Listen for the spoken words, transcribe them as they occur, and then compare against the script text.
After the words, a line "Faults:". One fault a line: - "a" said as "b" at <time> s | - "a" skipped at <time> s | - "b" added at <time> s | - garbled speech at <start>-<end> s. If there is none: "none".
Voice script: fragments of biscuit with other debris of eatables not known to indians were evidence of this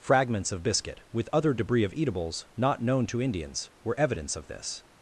fragments of biscuit with other debris of eatables not known to indians were evidence of this
Faults:
none